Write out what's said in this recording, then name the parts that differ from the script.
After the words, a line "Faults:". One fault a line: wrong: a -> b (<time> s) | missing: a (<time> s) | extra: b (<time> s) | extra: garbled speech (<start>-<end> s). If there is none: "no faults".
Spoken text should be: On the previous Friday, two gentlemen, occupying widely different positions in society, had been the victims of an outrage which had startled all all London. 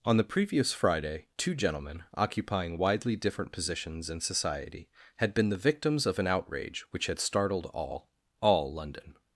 On the previous Friday, two gentlemen, occupying widely different positions in society, had been the victims of an outrage which had startled all all London.
Faults:
no faults